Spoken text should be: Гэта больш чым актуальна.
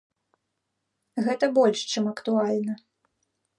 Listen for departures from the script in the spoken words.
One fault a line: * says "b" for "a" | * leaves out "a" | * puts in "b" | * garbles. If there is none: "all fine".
all fine